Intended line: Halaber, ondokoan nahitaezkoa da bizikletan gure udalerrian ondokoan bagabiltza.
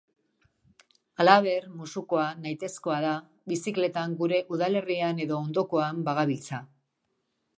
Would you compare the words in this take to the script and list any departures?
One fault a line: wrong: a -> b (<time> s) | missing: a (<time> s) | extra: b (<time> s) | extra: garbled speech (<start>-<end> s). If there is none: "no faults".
wrong: ondokoan -> musukoa (1.8 s)
extra: edo (5.3 s)